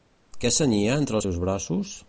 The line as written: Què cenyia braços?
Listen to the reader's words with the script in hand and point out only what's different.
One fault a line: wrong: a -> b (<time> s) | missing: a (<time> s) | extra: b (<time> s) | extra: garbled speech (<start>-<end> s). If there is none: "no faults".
extra: entre els seus (1.0 s)